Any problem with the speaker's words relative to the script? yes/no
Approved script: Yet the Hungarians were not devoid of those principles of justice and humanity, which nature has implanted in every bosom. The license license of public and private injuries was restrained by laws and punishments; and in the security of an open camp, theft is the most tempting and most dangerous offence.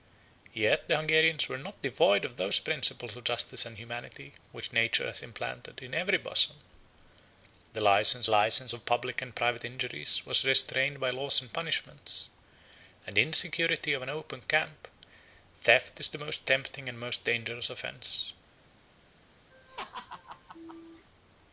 no